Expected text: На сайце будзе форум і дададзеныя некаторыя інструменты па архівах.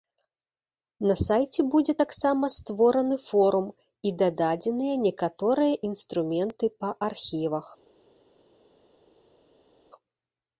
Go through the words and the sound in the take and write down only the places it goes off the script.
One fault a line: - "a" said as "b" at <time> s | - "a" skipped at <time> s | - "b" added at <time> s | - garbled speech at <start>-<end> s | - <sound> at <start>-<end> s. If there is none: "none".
- "таксама створаны" added at 2.0 s